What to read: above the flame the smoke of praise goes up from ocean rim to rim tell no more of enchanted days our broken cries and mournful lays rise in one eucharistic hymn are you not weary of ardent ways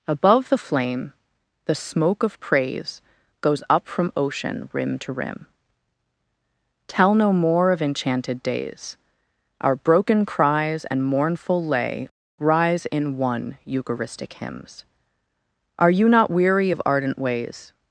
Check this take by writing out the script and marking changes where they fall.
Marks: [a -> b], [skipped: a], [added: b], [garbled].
above the flame the smoke of praise goes up from ocean rim to rim tell no more of enchanted days our broken cries and mournful [lays -> lay] rise in one eucharistic [hymn -> hymns] are you not weary of ardent ways